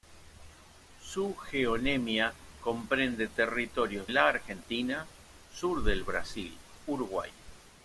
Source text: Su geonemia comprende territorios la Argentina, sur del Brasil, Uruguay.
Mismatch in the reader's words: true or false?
false